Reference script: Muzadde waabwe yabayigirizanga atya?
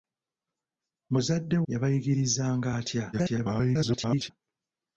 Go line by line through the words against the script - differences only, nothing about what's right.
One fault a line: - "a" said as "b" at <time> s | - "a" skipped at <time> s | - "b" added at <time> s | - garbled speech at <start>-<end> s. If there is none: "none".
- "waabwe" skipped at 1.6 s
- garbled speech at 3.1-4.3 s